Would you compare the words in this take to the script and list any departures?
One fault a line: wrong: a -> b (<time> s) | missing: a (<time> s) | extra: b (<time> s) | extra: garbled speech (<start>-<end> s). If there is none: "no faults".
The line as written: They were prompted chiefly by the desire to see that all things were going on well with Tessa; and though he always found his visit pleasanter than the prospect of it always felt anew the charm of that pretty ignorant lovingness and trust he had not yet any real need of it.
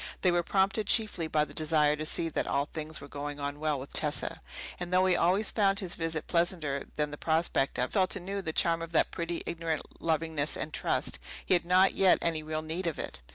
missing: it always (7.9 s)